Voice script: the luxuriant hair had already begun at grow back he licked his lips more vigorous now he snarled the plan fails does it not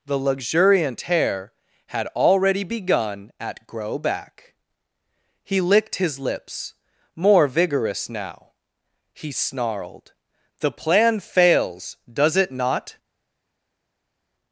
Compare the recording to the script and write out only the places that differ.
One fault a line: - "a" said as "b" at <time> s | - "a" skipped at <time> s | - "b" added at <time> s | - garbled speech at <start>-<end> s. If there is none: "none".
none